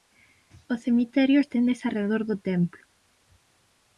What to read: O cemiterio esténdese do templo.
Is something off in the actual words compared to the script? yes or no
yes